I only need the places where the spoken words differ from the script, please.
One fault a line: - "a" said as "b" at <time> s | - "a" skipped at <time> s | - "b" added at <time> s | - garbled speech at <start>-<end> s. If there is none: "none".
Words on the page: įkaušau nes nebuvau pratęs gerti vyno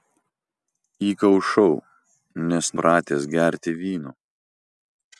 - "nebuvau" skipped at 2.7 s